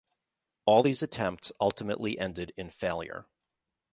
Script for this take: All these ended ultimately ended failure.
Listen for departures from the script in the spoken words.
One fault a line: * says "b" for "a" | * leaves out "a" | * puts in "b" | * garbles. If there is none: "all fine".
* says "attempts" for "ended"
* puts in "in"